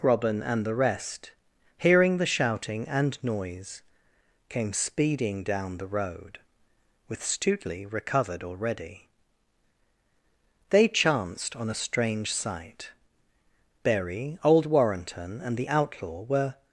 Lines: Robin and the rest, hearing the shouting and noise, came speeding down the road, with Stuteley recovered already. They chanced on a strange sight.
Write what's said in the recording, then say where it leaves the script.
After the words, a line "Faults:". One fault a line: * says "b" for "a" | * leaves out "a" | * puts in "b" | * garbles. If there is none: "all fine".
Robin and the rest, hearing the shouting and noise, came speeding down the road, with Stuteley recovered already. They chanced on a strange sight. Berry, old Warrenton, and the outlaw were
Faults:
* puts in "Berry old Warrenton and the outlaw were"